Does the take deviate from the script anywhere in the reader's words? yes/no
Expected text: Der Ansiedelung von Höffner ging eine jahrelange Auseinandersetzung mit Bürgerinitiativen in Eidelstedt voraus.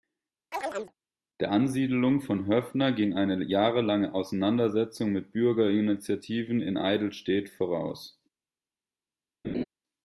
no